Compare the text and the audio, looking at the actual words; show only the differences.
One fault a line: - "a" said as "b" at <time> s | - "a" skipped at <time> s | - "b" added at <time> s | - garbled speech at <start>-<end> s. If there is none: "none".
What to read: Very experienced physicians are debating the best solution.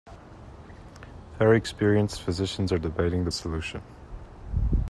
- "best" skipped at 3.3 s